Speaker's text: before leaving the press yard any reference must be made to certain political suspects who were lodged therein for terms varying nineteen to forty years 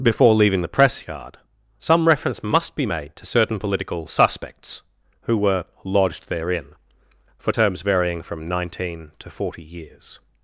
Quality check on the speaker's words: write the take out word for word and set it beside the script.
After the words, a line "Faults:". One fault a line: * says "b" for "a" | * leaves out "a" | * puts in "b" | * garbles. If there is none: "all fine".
before leaving the press yard some reference must be made to certain political suspects who were lodged therein for terms varying from nineteen to forty years
Faults:
* says "some" for "any"
* puts in "from"